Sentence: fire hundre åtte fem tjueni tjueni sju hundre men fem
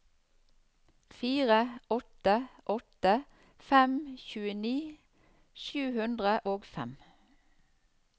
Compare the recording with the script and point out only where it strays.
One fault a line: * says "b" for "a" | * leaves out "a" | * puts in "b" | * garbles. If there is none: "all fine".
* says "åtte" for "hundre"
* leaves out "tjueni"
* says "og" for "men"